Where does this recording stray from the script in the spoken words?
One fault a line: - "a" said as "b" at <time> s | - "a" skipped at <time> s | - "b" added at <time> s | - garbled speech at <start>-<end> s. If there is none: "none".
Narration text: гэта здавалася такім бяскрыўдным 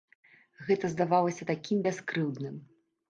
none